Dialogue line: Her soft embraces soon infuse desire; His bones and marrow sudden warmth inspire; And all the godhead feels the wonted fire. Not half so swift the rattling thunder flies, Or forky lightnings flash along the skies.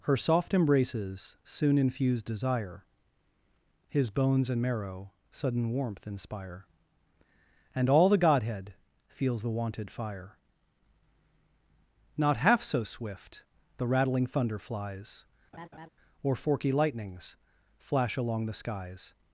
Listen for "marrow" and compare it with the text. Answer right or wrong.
right